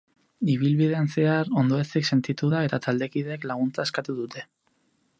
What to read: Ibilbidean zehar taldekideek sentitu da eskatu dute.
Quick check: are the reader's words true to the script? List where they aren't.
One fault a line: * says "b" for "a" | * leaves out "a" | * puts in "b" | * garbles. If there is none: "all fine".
* says "ondoezik" for "taldekideek"
* puts in "eta taldekideek laguntza"